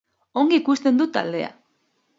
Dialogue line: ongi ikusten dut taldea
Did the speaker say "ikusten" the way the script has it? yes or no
yes